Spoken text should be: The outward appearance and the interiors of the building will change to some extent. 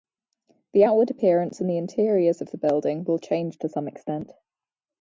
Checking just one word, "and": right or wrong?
right